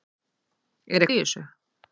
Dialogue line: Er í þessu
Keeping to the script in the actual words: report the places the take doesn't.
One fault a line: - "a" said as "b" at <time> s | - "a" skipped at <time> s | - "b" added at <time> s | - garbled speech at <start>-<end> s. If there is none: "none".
none